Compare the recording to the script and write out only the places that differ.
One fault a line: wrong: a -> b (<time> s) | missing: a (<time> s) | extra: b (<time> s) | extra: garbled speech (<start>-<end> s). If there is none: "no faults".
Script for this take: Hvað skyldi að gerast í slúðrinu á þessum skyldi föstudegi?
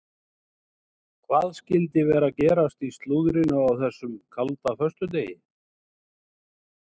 extra: vera (2.1 s)
wrong: skyldi -> kalda (4.4 s)